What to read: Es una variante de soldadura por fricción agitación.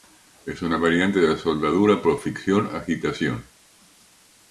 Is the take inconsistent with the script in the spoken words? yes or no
yes